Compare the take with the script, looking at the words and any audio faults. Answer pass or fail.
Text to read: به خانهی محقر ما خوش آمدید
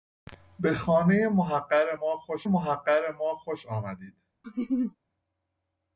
fail